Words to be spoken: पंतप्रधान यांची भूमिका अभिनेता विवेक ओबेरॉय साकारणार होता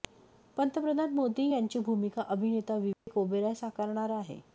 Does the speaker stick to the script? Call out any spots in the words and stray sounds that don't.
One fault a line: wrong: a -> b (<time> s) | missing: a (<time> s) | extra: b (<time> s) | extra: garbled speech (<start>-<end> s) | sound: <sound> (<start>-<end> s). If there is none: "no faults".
extra: मोदी (1.1 s)
sound: dropout (2.9-3.1 s)
wrong: होता -> आहे (4.1 s)